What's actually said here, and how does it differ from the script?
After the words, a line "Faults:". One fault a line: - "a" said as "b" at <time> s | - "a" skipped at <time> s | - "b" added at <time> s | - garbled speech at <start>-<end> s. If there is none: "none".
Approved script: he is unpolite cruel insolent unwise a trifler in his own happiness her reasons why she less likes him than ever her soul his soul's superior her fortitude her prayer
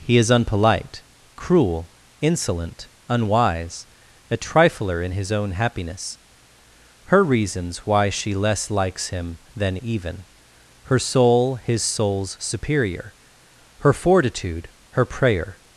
he is unpolite cruel insolent unwise a trifler in his own happiness her reasons why she less likes him than even her soul his soul's superior her fortitude her prayer
Faults:
- "ever" said as "even" at 9.8 s